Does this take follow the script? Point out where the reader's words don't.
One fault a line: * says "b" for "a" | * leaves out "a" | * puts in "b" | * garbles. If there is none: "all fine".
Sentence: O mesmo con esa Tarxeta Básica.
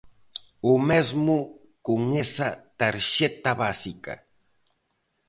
all fine